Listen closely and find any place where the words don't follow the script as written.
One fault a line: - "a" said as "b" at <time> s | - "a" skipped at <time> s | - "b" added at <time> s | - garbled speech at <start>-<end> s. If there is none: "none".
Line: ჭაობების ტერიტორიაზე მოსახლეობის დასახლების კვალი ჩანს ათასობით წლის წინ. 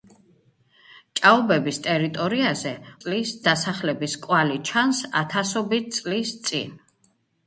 - "მოსახლეობის" said as "წლის" at 3.0 s